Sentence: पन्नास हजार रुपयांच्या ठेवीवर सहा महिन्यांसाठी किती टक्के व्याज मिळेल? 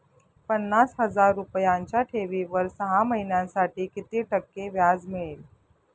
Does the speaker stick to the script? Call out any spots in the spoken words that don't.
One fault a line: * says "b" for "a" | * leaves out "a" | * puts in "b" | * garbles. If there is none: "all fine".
all fine